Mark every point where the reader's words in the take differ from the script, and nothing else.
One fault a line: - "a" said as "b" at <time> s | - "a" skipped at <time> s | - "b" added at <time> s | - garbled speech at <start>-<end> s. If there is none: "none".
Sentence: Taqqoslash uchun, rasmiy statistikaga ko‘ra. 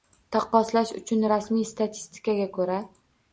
none